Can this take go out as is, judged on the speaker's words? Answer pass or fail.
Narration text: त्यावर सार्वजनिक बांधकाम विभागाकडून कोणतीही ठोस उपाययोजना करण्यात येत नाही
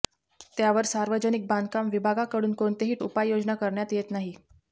fail